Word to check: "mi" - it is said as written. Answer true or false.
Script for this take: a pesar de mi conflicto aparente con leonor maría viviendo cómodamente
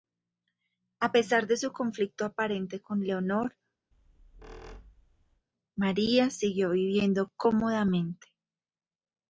false